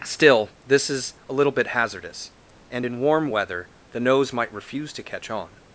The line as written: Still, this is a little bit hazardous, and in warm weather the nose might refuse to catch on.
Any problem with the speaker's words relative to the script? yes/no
no